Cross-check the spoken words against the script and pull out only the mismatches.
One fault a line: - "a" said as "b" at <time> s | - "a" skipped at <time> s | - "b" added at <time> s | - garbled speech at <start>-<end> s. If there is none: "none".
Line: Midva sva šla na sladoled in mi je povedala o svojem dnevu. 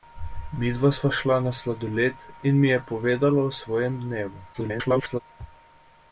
- garbled speech at 4.5-5.2 s